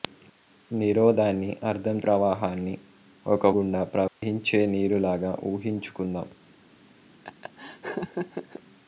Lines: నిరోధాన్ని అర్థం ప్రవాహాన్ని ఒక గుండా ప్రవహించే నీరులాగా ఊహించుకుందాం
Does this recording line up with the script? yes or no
yes